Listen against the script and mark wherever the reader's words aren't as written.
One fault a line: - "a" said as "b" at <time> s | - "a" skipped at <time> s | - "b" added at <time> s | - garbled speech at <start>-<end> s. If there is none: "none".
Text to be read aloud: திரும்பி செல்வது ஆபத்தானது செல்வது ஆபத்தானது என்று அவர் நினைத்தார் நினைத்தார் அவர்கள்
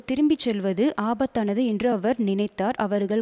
- "செல்வது ஆபத்தானது" skipped at 1.6 s
- "நினைத்தார்" skipped at 2.8 s